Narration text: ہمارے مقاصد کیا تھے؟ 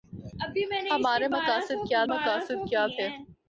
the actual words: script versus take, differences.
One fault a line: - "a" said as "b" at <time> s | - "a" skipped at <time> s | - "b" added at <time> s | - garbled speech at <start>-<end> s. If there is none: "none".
- "مقاصد کیا" added at 2.1 s